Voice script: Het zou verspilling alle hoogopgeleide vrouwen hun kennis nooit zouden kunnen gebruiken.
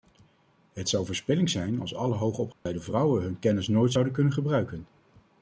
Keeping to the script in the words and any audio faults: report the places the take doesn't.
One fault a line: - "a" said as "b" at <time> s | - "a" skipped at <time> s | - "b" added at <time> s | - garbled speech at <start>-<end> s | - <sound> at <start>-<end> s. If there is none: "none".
- "zijn als" added at 1.5 s
- dropout at 2.5-2.7 s